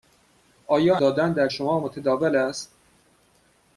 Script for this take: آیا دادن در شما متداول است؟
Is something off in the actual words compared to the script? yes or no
no